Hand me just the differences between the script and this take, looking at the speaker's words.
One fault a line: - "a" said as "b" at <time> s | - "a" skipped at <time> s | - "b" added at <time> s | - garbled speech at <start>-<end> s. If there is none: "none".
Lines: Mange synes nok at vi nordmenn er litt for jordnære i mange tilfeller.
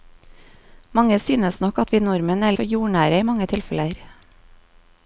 - "litt" skipped at 2.6 s